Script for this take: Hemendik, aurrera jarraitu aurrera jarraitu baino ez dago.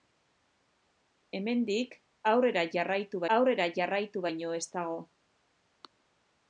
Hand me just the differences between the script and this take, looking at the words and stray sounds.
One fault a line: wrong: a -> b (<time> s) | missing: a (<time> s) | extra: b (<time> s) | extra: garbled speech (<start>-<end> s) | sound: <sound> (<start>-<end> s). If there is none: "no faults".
no faults